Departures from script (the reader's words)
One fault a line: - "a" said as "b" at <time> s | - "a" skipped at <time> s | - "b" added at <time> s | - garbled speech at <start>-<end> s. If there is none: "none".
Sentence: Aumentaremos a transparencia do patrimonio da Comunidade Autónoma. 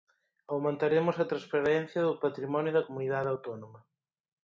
none